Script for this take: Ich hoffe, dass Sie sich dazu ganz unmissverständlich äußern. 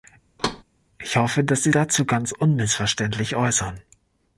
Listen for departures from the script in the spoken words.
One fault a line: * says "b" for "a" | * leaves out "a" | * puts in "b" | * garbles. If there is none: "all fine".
* leaves out "sich"